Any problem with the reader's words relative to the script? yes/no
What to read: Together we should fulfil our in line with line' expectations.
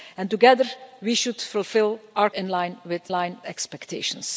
no